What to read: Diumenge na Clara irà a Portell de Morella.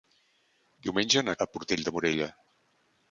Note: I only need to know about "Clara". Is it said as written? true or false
false